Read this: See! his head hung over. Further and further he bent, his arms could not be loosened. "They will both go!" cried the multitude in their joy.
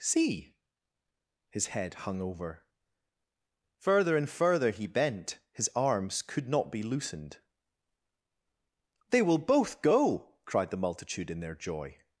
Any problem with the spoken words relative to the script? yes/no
no